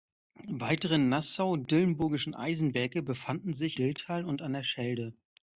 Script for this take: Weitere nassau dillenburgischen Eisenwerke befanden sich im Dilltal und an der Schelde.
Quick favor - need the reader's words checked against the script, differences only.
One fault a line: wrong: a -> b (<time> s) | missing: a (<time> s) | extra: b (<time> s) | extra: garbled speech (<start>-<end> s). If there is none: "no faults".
missing: im (3.8 s)